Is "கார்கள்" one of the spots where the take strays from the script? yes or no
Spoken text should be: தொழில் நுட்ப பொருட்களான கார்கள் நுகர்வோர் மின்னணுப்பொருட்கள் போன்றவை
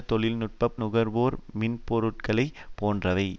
yes